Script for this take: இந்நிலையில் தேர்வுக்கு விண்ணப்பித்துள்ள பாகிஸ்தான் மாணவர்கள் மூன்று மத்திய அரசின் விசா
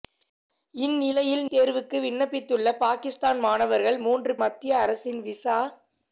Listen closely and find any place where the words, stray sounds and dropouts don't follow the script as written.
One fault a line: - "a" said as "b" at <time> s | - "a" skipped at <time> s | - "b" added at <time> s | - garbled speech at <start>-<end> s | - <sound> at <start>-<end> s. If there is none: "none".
none